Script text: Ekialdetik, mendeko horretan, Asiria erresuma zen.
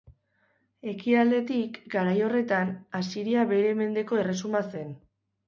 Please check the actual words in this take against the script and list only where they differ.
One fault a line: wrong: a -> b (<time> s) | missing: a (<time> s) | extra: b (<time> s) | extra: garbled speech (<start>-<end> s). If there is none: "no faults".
wrong: mendeko -> garai (2.0 s)
extra: bere mendeko (3.5 s)